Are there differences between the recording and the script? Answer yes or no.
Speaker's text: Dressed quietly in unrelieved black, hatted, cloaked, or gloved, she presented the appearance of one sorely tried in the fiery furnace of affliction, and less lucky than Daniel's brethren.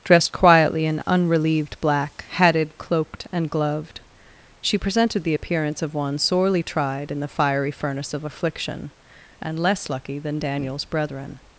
yes